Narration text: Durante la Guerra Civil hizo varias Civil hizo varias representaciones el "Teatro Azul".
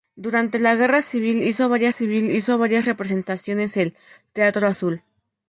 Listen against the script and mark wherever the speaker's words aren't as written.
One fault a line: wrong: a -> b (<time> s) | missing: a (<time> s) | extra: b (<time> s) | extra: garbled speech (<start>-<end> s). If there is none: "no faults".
no faults